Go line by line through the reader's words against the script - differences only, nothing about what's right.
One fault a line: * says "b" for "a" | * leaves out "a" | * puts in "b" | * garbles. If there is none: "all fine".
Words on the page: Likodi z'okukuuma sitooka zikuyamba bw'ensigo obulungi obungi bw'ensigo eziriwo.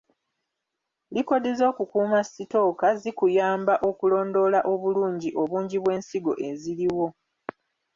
* says "okulondoola" for "bw'ensigo"